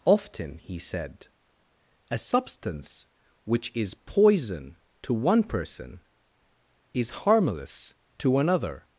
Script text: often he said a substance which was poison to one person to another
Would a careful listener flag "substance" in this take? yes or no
no